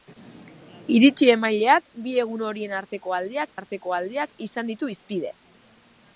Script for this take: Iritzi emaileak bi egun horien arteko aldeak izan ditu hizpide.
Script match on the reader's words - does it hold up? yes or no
no